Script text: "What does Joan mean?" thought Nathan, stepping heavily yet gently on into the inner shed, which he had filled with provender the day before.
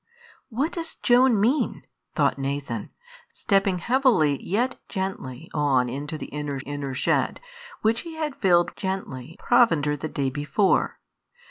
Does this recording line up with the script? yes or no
no